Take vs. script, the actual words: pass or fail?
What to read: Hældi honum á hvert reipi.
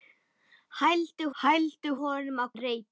fail